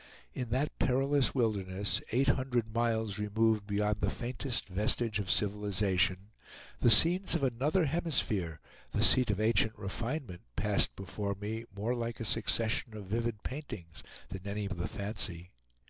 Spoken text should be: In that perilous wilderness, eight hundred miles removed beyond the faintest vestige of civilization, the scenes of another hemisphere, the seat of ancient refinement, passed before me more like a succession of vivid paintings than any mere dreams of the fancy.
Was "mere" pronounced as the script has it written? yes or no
no